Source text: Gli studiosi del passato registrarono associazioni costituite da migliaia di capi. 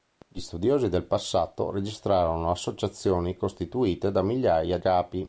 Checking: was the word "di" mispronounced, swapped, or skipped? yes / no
yes